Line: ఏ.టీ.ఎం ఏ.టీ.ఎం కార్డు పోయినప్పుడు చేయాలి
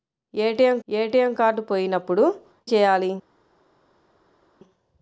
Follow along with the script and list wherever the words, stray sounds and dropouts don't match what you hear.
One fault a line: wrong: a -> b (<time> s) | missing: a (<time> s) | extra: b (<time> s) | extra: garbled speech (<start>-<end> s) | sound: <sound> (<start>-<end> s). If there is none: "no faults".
no faults